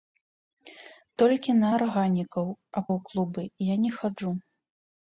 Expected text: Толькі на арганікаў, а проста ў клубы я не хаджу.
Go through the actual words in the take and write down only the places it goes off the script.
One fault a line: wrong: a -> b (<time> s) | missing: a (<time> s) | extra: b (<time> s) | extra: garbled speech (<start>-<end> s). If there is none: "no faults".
missing: проста (2.9 s)